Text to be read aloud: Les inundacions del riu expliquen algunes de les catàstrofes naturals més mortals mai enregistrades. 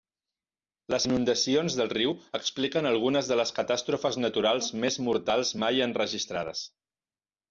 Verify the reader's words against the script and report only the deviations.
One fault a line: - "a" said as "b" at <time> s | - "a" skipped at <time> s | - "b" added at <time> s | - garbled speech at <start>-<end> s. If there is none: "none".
none